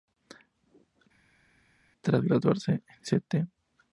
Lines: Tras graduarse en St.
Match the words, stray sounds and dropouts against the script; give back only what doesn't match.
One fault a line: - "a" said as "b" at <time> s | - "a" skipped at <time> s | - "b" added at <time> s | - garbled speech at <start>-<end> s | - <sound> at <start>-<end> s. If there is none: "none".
none